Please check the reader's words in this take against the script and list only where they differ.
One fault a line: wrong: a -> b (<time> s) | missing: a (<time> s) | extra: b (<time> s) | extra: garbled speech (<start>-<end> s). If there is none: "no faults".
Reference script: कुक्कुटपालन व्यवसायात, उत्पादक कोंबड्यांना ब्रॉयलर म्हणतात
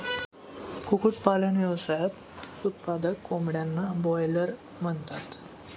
no faults